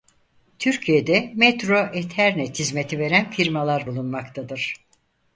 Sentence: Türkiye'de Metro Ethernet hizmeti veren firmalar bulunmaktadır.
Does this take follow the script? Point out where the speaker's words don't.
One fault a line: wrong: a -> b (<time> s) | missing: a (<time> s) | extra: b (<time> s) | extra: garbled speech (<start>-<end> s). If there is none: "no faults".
no faults